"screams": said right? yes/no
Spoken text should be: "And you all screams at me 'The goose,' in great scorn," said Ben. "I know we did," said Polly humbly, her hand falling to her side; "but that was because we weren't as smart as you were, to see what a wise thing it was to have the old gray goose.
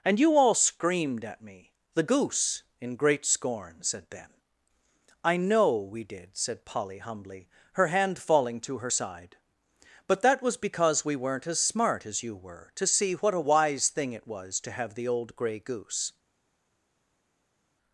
no